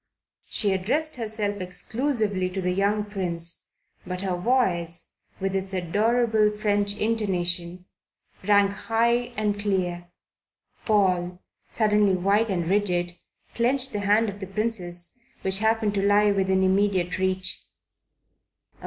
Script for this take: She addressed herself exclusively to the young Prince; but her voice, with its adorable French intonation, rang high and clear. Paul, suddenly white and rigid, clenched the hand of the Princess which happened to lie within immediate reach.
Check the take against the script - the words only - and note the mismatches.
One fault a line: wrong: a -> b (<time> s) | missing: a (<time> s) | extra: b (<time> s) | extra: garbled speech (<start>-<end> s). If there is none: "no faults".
no faults